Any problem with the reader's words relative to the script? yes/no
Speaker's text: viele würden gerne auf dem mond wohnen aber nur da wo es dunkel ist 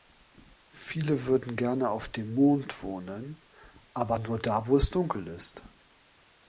no